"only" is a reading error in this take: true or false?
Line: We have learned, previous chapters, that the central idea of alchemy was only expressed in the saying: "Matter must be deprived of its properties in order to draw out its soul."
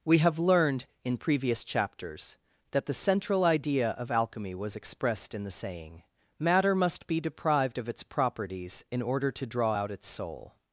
true